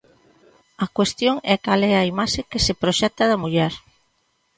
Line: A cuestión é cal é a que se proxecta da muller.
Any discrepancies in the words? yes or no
yes